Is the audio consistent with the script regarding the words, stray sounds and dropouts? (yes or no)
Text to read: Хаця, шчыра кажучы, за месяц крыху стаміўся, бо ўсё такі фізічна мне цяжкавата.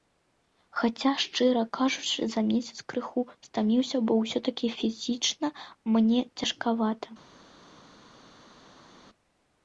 yes